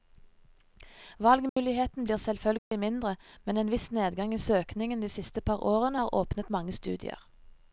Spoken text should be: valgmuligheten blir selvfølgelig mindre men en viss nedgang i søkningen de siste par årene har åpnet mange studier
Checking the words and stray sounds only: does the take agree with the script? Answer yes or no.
no